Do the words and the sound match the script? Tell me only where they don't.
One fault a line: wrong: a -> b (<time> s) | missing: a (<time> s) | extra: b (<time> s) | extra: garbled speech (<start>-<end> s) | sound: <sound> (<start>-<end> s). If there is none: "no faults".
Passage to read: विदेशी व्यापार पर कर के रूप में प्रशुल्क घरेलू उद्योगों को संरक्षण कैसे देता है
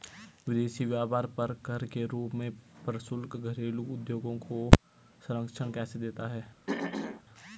sound: throat clearing (6.7-7.2 s)